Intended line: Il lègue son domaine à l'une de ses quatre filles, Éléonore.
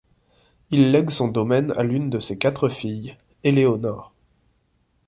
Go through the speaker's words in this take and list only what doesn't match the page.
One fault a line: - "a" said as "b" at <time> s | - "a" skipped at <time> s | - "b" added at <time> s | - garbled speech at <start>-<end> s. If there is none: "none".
none